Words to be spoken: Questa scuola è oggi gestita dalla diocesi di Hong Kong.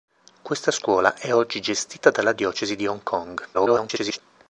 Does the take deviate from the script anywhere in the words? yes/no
yes